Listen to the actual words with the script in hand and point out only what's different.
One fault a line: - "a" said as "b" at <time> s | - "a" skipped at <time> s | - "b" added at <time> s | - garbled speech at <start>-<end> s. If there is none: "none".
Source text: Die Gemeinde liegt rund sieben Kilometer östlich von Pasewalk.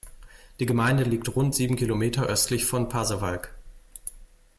none